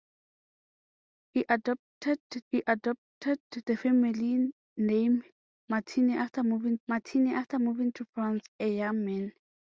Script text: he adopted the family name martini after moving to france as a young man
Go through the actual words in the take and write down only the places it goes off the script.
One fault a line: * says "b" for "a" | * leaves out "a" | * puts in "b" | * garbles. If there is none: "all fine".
* puts in "he adopted"
* puts in "martini after moving"
* leaves out "as"